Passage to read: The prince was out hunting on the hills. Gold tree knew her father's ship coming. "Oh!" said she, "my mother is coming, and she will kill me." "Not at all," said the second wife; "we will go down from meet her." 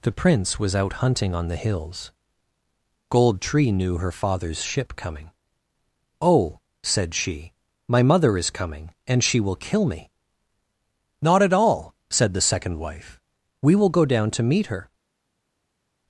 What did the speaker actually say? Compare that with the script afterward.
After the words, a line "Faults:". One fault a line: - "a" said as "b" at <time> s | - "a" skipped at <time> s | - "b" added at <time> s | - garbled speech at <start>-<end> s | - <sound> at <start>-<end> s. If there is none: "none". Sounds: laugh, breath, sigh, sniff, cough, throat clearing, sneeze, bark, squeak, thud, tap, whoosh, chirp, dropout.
The prince was out hunting on the hills. Gold tree knew her father's ship coming. "Oh!" said she, "my mother is coming, and she will kill me." "Not at all," said the second wife; "we will go down to meet her."
Faults:
- "from" said as "to" at 14.3 s